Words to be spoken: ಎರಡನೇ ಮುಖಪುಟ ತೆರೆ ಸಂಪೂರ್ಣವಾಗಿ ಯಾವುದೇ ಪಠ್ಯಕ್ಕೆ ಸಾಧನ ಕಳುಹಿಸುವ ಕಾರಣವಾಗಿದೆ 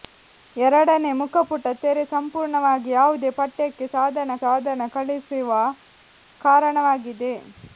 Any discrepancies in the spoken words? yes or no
yes